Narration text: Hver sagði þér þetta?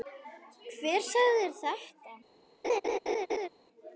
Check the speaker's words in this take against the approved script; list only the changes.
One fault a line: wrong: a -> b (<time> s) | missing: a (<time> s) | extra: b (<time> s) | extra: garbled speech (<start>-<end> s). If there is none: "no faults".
no faults